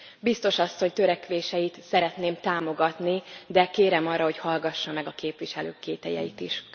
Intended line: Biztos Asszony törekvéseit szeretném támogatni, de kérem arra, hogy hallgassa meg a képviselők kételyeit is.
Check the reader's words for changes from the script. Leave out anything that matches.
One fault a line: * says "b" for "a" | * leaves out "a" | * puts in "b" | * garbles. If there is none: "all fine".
all fine